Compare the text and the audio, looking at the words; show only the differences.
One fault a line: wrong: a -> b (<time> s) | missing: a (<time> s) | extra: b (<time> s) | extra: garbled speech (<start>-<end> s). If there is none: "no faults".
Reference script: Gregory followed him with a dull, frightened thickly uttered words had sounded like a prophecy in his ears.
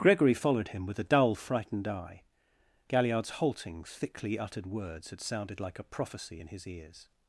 extra: eye Galliard's halting (1.9 s)